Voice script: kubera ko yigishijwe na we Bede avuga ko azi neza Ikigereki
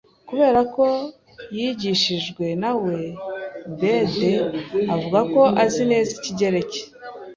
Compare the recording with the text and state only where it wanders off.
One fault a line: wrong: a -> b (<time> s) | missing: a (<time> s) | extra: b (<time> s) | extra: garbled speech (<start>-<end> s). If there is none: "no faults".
no faults